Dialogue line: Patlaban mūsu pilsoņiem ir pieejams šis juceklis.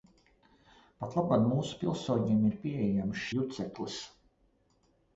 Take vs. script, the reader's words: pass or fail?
fail